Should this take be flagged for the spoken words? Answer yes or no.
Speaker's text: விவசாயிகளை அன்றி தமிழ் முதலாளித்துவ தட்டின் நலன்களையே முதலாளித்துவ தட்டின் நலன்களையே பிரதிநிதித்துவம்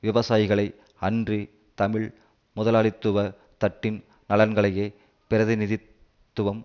yes